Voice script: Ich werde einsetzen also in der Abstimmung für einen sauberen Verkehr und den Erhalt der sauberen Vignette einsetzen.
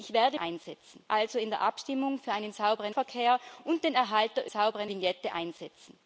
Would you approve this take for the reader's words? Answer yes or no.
yes